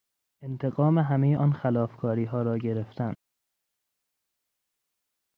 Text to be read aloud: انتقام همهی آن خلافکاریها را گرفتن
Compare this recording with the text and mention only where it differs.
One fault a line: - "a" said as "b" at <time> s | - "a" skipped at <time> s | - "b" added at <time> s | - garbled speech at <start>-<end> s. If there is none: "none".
none